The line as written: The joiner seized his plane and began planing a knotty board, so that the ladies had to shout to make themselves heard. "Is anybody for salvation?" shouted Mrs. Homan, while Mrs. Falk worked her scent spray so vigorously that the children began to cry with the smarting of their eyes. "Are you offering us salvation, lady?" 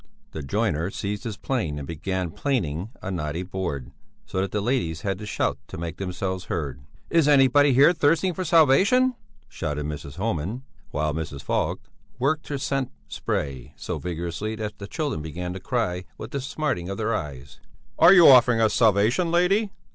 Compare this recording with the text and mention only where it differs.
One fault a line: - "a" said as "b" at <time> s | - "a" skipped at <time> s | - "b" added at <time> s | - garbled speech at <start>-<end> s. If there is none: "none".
- "here thirsting" added at 7.7 s